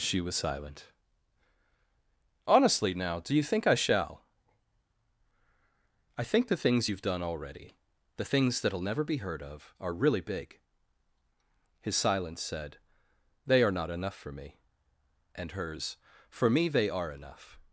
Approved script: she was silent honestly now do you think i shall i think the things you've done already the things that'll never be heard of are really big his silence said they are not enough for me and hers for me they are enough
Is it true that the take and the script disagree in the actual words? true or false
false